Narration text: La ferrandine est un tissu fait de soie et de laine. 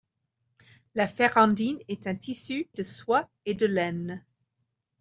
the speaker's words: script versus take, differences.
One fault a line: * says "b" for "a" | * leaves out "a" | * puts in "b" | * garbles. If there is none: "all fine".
* leaves out "fait"